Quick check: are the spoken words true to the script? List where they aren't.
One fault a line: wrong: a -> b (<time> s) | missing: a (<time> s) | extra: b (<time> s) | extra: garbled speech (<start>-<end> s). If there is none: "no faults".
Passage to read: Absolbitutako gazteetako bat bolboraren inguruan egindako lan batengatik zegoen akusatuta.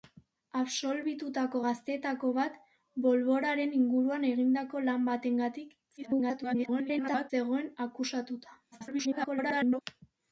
extra: garbled speech (6.0-7.3 s)
extra: garbled speech (8.7-9.8 s)